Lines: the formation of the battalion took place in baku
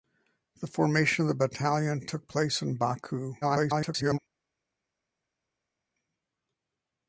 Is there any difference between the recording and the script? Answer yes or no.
yes